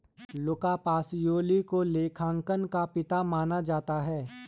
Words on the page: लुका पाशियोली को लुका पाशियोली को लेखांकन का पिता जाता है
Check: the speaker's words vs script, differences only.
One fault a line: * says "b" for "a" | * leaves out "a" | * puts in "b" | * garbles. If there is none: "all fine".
* leaves out "लुका पाशियोली को"
* puts in "माना"